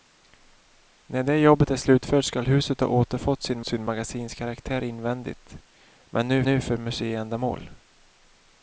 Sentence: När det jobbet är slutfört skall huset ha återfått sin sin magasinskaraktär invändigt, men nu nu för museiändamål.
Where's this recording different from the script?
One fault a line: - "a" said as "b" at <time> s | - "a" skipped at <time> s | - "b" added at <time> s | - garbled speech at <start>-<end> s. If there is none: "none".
none